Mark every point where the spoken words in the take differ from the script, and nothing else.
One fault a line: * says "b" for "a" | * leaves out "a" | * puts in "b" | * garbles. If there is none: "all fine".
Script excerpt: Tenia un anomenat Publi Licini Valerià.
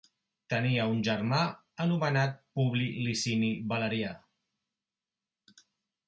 * puts in "germà"